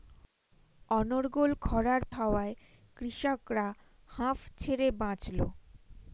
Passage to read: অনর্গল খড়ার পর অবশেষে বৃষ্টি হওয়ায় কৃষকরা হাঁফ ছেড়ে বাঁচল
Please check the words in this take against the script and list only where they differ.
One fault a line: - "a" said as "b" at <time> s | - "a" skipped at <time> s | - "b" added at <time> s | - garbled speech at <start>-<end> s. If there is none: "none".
- "পর অবশেষে বৃষ্টি" skipped at 2.0 s